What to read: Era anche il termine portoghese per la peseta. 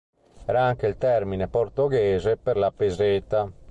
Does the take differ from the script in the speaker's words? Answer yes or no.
no